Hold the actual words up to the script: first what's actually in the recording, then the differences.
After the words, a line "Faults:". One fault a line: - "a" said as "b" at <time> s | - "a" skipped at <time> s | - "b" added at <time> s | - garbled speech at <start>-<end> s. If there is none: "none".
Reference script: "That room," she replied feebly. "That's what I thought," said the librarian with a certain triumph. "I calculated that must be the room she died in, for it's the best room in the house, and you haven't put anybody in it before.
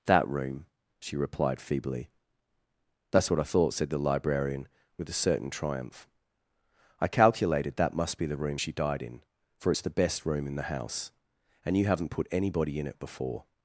"That room," she replied feebly. "That's what I thought," said the librarian with a certain triumph. "I calculated that must be the room she died in, for it's the best room in the house, and you haven't put anybody in it before.
Faults:
none